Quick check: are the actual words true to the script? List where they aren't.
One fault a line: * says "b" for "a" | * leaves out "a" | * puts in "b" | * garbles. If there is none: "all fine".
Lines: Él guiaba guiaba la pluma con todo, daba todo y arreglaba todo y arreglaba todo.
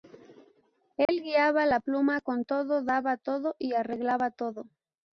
* leaves out "guiaba"
* leaves out "y arreglaba todo"